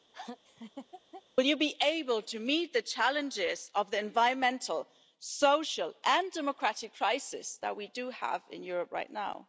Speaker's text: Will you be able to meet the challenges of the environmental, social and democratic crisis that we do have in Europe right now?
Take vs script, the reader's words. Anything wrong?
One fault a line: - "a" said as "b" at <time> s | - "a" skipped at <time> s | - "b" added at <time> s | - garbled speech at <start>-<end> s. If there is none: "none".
none